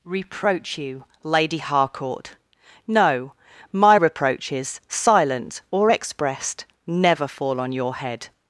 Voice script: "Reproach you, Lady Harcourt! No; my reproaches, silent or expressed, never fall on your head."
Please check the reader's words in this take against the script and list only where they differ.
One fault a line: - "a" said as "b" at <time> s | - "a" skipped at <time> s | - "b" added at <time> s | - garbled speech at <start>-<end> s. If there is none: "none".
none